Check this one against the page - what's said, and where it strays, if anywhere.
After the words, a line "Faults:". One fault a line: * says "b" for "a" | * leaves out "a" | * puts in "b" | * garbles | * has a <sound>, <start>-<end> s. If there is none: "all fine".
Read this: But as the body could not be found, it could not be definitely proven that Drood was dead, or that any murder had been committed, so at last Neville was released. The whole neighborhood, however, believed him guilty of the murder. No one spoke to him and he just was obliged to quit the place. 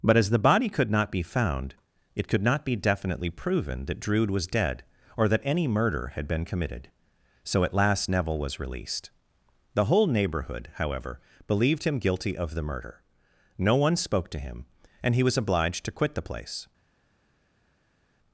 But as the body could not be found, it could not be definitely proven that Drood was dead, or that any murder had been committed, so at last Neville was released. The whole neighborhood, however, believed him guilty of the murder. No one spoke to him and he was obliged to quit the place.
Faults:
* leaves out "just"